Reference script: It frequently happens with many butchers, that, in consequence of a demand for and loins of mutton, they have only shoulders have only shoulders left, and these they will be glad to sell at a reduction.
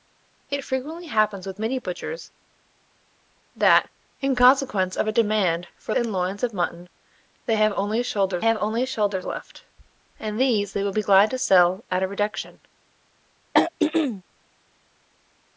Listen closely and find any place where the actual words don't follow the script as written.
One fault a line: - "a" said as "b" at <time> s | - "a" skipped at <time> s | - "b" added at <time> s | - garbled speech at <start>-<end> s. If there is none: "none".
none